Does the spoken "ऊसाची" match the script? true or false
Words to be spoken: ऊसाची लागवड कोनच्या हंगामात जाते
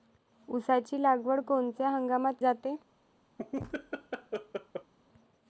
true